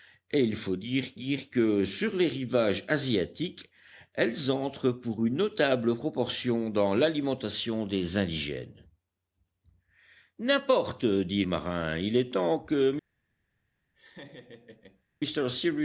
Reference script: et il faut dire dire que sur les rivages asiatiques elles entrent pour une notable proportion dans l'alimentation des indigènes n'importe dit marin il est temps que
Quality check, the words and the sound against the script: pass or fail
fail